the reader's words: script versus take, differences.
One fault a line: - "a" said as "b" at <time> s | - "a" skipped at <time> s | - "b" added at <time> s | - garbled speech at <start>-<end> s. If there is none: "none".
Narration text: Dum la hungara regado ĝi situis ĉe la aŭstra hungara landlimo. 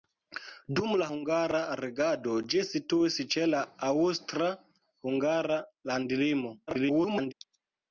- garbled speech at 6.7-7.3 s